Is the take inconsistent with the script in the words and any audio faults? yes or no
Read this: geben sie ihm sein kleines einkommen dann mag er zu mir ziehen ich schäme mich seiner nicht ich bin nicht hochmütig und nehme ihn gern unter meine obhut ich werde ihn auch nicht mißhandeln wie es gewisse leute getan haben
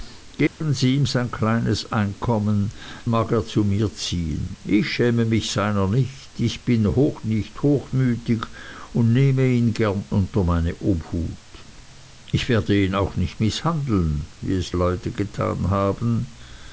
yes